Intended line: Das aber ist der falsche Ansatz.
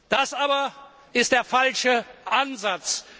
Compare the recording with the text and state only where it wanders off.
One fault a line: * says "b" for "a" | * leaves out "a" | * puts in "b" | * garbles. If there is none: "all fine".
all fine